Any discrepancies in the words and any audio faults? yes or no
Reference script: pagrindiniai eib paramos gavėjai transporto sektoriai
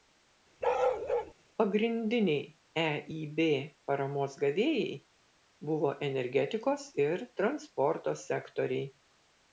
yes